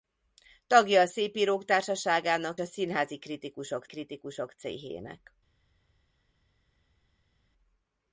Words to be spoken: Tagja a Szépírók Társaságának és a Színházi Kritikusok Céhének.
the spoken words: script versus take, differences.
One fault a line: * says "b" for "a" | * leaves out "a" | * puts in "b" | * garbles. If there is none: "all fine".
* leaves out "és"
* puts in "Kritikusok"